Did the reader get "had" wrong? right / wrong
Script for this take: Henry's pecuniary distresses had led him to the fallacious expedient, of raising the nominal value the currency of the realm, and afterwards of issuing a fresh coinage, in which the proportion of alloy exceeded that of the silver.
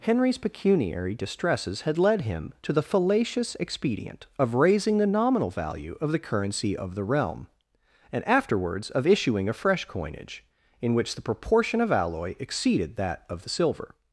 right